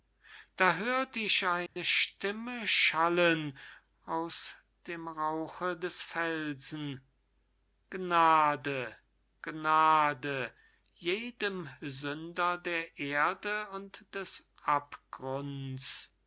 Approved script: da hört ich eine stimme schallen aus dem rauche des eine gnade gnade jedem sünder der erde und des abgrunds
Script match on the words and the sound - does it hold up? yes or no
no